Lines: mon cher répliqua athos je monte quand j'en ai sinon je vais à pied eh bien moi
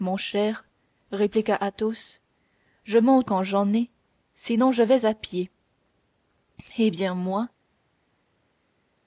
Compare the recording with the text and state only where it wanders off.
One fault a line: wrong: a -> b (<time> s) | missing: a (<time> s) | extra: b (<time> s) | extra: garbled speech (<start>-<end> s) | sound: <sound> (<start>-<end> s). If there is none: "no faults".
no faults